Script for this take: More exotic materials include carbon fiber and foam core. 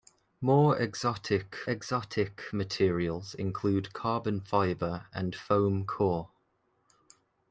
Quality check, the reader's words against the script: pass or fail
fail